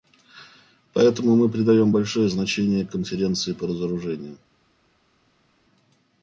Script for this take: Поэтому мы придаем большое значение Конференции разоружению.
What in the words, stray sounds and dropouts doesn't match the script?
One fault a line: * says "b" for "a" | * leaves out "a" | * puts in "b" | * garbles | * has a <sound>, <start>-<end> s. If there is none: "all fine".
* puts in "по"